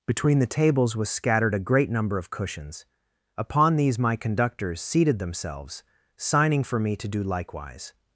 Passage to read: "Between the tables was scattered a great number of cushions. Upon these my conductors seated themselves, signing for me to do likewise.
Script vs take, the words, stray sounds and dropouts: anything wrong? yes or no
no